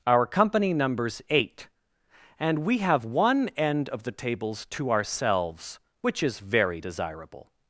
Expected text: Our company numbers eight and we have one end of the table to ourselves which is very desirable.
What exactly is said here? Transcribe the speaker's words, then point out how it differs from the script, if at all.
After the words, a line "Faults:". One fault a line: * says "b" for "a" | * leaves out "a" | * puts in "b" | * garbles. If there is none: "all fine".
Our company numbers eight and we have one end of the tables to ourselves which is very desirable.
Faults:
* says "tables" for "table"